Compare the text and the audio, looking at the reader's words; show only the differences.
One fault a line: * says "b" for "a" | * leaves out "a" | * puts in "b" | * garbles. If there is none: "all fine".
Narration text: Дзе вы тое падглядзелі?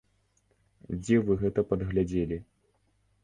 * says "гэта" for "тое"